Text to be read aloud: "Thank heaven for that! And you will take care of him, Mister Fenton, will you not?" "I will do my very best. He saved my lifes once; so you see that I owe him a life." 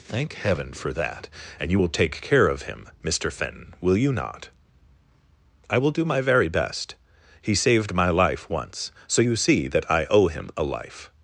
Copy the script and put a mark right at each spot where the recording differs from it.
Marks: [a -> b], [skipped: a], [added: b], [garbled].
"Thank heaven for that! And you will take care of him, Mister Fenton, will you not?" "I will do my very best. He saved my [lifes -> life] once; so you see that I owe him a life."